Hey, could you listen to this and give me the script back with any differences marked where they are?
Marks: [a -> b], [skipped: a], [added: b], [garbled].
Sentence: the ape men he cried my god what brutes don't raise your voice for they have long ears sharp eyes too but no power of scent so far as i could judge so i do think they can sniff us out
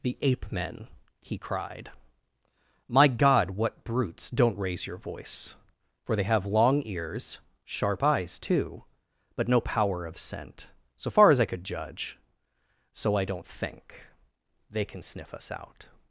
the ape men he cried my god what brutes don't raise your voice for they have long ears sharp eyes too but no power of scent so far as i could judge so i [do -> don't] think they can sniff us out